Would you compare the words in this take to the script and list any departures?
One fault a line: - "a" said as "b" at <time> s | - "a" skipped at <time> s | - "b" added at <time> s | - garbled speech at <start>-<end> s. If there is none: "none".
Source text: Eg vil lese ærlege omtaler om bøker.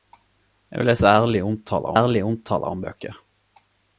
- "ærlege omtaler" added at 1.9 s